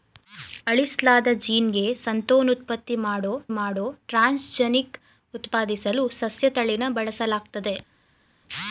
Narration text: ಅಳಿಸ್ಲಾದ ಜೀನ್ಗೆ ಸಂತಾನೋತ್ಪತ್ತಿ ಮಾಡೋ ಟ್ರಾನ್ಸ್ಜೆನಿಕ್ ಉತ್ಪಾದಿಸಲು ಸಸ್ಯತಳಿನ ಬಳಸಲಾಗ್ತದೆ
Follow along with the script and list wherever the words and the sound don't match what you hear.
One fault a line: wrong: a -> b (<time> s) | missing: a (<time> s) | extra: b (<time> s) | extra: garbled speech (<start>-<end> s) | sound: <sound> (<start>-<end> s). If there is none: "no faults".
extra: ಮಾಡೋ (3.5 s)